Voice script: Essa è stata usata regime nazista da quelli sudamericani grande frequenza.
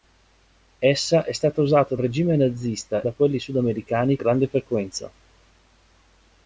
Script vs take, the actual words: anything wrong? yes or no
no